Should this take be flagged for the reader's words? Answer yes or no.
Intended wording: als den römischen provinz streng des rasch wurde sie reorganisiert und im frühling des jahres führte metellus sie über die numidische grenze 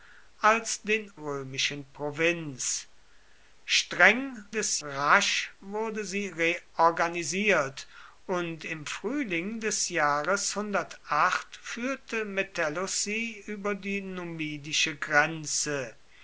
no